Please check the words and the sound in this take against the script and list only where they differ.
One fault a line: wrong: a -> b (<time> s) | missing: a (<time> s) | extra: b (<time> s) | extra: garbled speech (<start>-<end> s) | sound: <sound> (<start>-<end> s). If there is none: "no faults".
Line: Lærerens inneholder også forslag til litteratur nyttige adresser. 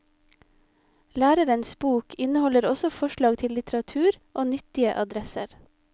extra: bok (1.7 s)
extra: og (4.3 s)